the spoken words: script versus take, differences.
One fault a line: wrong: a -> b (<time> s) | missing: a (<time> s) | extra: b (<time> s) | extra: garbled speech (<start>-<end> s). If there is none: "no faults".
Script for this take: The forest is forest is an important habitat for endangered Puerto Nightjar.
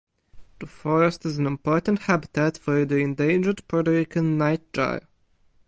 missing: forest is (1.4 s)
extra: the (2.9 s)
extra: Rican (3.9 s)